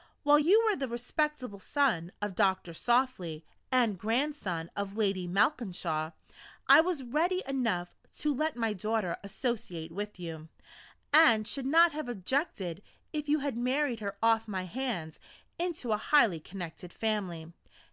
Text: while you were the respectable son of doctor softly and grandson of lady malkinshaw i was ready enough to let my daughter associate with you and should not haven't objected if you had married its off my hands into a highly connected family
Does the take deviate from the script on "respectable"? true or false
false